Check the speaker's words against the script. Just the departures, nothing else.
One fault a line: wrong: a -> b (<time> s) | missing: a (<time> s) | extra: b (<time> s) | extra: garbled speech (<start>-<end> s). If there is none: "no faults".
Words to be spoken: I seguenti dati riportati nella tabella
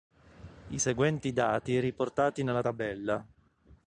no faults